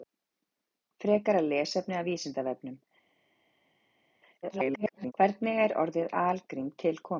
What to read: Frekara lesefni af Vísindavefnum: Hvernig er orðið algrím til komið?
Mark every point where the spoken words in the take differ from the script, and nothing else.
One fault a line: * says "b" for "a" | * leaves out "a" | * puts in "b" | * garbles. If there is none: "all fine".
* garbles